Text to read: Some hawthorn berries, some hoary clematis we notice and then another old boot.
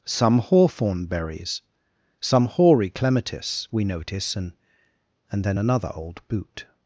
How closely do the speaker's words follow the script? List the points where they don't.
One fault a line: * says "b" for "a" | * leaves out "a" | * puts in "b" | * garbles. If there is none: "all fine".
* puts in "and"